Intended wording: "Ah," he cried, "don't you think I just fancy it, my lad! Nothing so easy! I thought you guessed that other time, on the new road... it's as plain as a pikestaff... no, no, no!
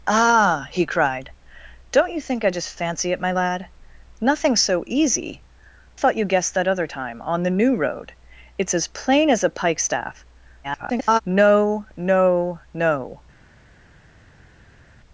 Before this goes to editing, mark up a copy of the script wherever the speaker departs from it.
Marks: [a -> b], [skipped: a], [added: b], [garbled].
"Ah," he cried, "don't you think I just fancy it, my lad! Nothing so easy! [skipped: I] thought you guessed that other time, on the new road... it's as plain as a pikestaff... [garbled] no, no, no!